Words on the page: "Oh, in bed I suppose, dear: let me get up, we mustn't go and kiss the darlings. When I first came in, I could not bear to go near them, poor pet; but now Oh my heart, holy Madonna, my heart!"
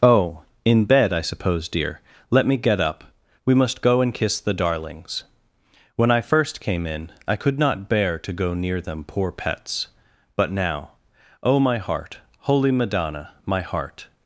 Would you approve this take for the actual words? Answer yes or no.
no